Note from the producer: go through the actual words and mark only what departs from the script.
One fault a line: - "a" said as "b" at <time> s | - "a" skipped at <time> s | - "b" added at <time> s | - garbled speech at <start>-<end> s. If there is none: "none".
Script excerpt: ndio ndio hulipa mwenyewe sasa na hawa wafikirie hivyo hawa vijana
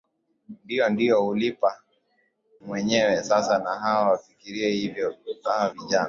none